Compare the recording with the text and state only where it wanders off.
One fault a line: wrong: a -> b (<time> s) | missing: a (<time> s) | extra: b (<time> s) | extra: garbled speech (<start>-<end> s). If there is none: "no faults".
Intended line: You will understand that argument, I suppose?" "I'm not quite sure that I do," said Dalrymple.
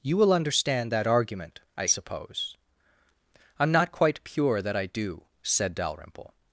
wrong: sure -> pure (4.2 s)